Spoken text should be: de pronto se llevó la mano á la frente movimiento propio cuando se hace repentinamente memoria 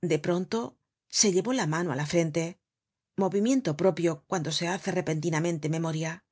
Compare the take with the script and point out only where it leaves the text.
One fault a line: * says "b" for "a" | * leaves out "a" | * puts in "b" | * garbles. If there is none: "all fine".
all fine